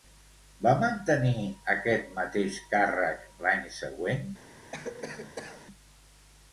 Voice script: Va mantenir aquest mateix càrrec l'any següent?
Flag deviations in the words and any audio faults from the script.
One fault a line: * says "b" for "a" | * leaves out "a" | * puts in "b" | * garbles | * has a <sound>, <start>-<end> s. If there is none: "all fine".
* has a cough, 4.7-5.7 s